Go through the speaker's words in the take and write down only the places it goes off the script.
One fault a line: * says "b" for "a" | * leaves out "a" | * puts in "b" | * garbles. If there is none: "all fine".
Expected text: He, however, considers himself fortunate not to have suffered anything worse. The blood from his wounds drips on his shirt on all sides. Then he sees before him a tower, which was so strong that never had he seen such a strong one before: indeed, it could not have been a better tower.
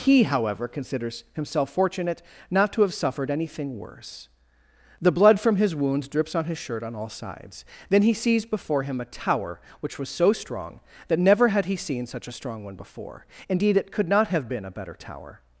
all fine